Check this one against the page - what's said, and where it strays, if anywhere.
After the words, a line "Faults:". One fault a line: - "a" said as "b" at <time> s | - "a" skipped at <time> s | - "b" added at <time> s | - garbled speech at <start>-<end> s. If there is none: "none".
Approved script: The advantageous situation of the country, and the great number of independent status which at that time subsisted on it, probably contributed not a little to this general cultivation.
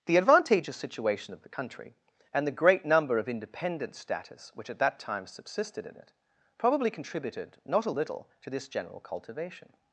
The advantageous situation of the country, and the great number of independent status which at that time subsisted in it, probably contributed not a little to this general cultivation.
Faults:
- "on" said as "in" at 5.9 s